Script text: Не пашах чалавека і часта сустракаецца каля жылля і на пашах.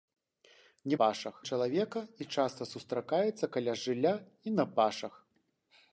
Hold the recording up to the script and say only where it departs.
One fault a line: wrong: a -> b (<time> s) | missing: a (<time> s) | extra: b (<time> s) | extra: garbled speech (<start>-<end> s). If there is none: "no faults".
no faults